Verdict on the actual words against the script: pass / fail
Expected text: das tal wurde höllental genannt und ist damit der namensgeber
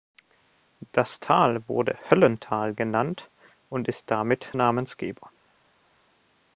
fail